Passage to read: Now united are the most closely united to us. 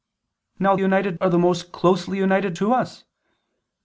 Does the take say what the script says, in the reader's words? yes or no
yes